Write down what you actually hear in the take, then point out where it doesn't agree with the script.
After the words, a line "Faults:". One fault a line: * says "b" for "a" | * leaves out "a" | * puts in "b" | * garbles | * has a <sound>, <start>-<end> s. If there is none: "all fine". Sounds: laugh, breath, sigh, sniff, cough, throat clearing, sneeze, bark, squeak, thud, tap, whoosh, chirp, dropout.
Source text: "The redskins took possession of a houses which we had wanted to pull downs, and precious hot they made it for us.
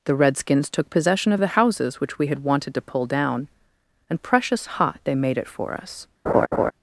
"The redskins took possession of the houses which we had wanted to pull down, and precious hot they made it for us.
Faults:
* says "the" for "a"
* says "down" for "downs"
* has a laugh, 6.3-6.7 s